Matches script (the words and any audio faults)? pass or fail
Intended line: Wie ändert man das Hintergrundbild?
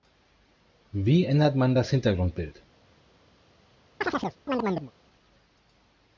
fail